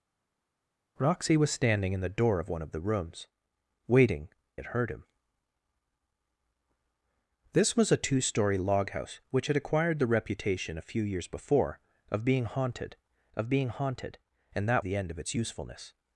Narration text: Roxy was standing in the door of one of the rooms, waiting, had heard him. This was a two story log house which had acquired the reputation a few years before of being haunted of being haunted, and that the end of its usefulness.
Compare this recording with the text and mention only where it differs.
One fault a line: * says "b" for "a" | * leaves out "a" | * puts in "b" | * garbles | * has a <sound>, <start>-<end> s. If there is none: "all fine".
all fine